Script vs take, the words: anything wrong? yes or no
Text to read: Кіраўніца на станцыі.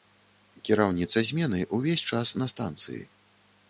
yes